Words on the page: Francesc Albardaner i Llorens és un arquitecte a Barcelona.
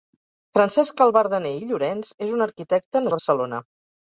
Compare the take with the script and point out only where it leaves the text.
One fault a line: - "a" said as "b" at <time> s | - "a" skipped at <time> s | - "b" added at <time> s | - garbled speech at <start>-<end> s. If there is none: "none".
none